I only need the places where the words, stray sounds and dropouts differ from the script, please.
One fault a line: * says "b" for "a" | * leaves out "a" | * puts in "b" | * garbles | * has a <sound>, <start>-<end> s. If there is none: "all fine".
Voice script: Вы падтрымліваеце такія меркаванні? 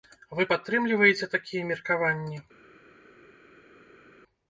all fine